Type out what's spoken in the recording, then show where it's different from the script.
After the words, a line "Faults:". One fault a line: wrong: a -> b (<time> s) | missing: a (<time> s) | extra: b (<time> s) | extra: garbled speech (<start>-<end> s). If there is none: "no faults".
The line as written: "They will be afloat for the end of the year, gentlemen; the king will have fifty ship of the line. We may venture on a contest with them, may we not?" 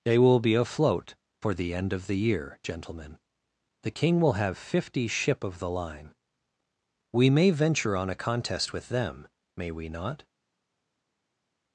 "They will be afloat for the end of the year, gentlemen; the king will have fifty ship of the line. We may venture on a contest with them, may we not?"
Faults:
no faults